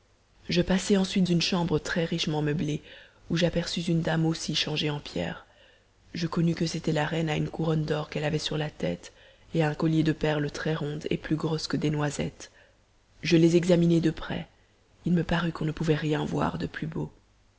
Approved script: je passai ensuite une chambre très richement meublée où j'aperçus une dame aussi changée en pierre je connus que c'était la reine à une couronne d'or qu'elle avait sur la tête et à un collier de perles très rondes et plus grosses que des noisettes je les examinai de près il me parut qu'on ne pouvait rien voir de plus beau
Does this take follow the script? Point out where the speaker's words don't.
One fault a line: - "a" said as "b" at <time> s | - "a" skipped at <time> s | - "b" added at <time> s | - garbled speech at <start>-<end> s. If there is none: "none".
none